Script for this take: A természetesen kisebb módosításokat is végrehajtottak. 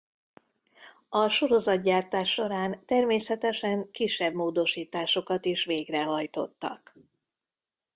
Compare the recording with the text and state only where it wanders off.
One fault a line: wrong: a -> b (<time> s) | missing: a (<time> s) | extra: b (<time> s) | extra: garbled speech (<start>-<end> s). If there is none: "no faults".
extra: sorozatgyártás során (1.3 s)